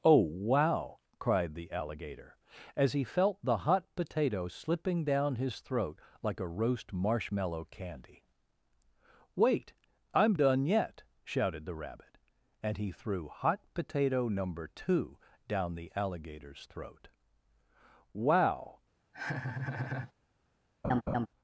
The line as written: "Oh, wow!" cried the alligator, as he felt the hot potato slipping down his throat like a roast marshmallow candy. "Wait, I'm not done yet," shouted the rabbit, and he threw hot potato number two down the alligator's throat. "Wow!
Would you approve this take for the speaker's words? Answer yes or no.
no